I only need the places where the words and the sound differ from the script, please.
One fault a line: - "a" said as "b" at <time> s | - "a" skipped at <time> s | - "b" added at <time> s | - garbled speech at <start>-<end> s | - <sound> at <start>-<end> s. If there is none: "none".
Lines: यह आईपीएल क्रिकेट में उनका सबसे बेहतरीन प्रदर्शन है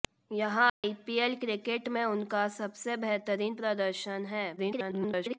- dropout at 0.7-0.8 s
- garbled speech at 4.6-5.4 s